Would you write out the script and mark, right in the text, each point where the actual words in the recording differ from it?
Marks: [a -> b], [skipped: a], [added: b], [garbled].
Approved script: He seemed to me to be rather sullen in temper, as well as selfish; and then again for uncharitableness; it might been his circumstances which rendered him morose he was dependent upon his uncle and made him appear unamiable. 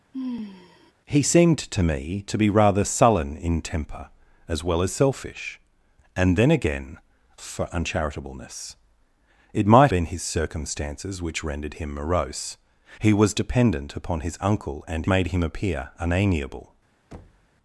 He seemed to me to be rather sullen in temper, as well as selfish; and then again for uncharitableness; it might been his circumstances which rendered him morose he was dependent upon his uncle and made him appear unamiable.